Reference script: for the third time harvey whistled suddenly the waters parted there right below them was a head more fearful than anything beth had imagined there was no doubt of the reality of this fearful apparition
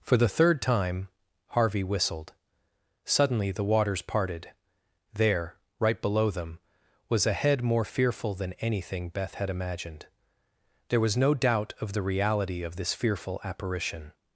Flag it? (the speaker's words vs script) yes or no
no